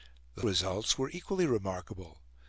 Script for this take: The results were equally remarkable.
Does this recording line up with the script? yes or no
yes